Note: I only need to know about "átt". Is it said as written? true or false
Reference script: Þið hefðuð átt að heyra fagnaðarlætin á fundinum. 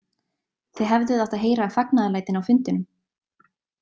true